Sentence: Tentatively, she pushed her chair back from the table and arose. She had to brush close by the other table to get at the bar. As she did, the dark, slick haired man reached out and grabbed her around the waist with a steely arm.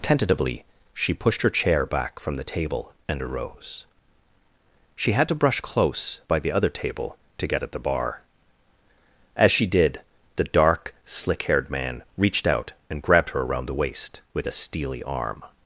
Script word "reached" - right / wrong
right